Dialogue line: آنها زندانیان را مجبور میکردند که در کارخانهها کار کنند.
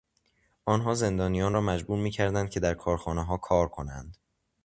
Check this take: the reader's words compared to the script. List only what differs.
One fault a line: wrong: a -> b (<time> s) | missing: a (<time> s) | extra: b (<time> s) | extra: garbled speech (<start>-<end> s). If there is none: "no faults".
no faults